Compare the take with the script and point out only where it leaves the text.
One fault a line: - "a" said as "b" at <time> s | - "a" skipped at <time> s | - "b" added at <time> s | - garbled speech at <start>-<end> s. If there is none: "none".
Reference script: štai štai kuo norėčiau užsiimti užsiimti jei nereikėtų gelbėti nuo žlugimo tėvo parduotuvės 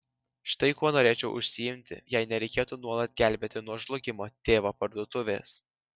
- "štai" skipped at 0.7 s
- "užsiimti" skipped at 2.0 s
- "nuolat" added at 2.8 s